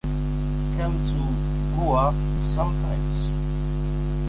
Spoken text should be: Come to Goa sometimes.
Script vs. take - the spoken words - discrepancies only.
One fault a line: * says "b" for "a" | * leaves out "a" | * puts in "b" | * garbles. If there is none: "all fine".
all fine